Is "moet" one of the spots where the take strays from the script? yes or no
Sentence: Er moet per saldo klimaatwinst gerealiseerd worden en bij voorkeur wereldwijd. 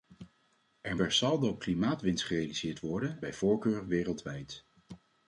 yes